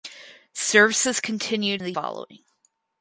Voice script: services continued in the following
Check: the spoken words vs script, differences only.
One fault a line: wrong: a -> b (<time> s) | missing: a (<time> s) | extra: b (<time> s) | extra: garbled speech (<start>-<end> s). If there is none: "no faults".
no faults